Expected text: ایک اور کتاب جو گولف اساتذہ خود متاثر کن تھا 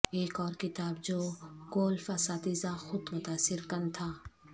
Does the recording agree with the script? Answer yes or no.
yes